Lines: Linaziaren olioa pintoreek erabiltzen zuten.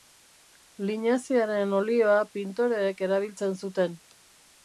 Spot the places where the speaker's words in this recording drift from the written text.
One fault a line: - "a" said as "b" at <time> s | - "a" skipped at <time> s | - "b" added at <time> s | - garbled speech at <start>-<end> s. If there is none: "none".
none